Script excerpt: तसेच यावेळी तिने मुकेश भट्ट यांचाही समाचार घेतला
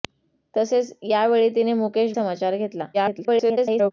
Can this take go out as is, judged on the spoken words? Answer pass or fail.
fail